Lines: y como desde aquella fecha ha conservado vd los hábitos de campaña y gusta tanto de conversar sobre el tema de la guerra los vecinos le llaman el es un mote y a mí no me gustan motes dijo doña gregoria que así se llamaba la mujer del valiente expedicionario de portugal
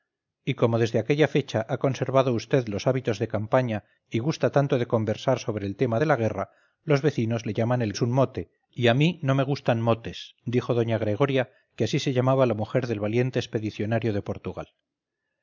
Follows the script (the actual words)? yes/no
yes